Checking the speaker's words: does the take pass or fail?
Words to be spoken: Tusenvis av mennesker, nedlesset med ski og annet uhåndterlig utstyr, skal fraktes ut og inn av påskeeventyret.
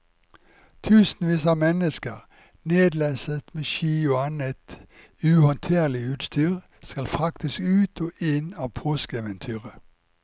pass